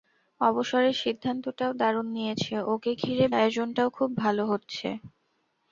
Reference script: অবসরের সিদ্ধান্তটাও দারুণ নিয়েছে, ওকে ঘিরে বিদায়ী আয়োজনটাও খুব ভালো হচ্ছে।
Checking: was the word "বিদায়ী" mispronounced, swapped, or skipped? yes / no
yes